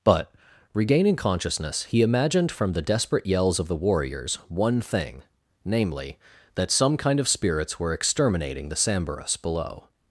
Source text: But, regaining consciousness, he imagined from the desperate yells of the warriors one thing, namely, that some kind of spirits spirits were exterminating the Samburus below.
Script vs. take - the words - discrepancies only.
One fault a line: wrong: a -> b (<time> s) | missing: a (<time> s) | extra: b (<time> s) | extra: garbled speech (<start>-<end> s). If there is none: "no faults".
missing: spirits (7.8 s)